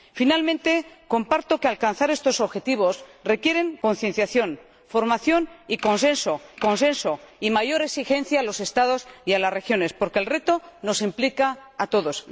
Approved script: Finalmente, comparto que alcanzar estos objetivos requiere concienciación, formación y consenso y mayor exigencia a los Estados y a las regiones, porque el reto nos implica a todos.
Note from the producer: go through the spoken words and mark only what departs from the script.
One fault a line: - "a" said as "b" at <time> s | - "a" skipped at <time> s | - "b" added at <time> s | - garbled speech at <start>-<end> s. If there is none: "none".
- "consenso" added at 6.6 s